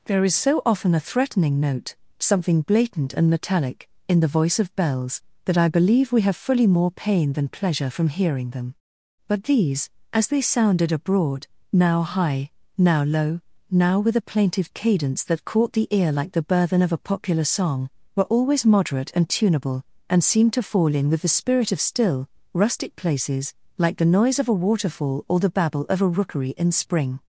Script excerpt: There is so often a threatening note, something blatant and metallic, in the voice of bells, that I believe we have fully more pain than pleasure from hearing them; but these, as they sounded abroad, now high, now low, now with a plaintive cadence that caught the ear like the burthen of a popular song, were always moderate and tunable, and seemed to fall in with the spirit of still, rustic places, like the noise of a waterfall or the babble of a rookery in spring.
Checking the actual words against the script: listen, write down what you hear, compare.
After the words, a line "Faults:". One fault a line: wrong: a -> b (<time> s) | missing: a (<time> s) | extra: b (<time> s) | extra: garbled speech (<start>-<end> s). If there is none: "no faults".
There is so often a threatening note, something blatant and metallic, in the voice of bells, that I believe we have fully more pain than pleasure from hearing them; but these, as they sounded abroad, now high, now low, now with a plaintive cadence that caught the ear like the burthen of a popular song, were always moderate and tunable, and seemed to fall in with the spirit of still, rustic places, like the noise of a waterfall or the babble of a rookery in spring.
Faults:
no faults